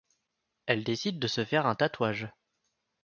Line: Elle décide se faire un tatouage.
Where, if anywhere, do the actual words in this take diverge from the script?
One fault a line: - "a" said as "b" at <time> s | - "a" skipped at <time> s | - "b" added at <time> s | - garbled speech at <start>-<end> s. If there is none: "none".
- "de" added at 1.2 s